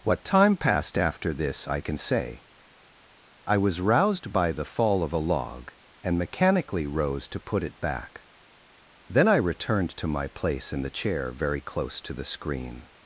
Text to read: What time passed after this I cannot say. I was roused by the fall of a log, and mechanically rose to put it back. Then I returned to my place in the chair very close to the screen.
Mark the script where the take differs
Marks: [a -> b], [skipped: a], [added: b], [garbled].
What time passed after this I [cannot -> can] say. I was roused by the fall of a log, and mechanically rose to put it back. Then I returned to my place in the chair very close to the screen.